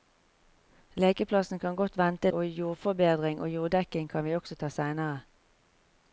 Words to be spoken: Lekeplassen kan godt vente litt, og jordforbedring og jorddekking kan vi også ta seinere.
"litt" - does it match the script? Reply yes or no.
no